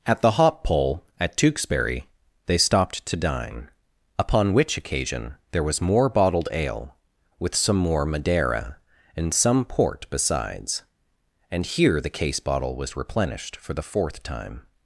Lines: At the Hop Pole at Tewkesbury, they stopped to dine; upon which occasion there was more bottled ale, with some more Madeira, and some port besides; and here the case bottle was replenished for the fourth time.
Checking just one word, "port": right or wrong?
right